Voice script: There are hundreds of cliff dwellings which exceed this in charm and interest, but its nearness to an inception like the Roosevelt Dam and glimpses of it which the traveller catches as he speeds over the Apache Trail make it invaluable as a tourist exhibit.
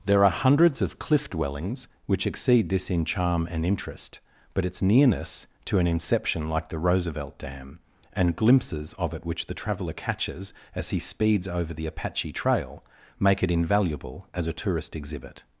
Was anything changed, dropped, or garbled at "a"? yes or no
no